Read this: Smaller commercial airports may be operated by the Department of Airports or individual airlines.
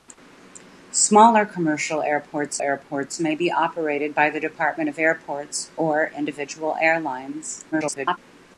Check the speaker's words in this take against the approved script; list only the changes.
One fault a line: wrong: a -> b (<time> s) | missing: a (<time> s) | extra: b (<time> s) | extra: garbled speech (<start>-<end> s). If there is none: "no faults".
extra: airports (2.6 s)
extra: garbled speech (7.7-8.2 s)